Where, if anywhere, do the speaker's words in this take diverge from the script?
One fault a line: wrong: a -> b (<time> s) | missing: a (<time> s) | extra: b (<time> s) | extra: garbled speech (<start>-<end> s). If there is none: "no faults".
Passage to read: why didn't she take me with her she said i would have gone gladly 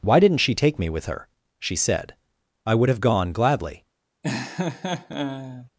no faults